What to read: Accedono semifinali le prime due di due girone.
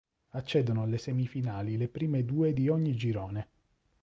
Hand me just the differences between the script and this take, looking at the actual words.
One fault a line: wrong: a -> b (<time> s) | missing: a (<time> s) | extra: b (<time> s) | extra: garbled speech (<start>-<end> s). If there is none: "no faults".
extra: alle (0.8 s)
wrong: due -> ogni (2.7 s)